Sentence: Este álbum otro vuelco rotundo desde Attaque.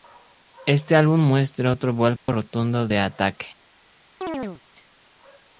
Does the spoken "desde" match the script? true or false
false